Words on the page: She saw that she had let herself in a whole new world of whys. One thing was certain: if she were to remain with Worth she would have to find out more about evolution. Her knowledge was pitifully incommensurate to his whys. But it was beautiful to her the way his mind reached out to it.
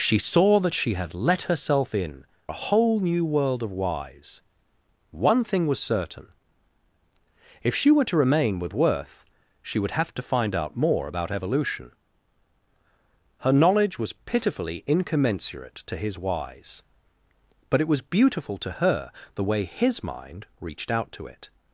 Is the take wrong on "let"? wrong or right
right